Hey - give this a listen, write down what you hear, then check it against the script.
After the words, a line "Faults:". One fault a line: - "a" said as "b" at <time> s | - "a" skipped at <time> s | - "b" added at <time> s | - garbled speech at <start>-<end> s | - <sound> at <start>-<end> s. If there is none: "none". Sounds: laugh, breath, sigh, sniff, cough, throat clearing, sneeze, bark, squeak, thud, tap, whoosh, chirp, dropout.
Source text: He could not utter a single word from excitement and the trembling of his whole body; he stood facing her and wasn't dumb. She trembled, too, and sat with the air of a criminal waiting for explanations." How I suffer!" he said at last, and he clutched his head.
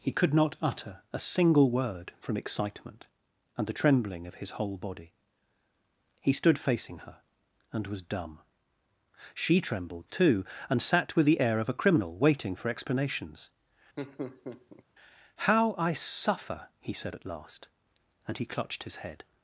He could not utter a single word from excitement and the trembling of his whole body; he stood facing her and was dumb. She trembled, too, and sat with the air of a criminal waiting for explanations." How I suffer!" he said at last, and he clutched his head.
Faults:
- "wasn't" said as "was" at 7.9 s
- laugh at 14.0-14.8 s